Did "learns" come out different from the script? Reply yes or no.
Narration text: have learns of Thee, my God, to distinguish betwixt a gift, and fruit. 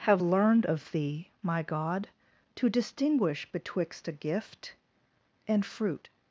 yes